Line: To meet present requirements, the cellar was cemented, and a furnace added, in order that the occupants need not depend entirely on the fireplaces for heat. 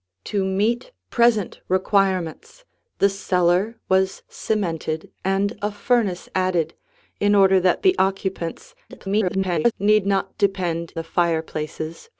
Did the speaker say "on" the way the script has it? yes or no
no